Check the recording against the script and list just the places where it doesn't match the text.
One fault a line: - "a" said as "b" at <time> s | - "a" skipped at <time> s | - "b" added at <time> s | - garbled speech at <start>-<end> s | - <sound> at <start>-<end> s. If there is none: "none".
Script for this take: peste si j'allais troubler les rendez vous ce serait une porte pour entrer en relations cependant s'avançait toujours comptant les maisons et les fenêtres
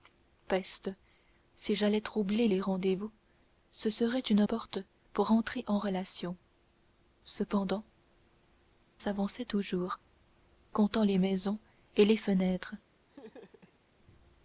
- laugh at 13.1-13.8 s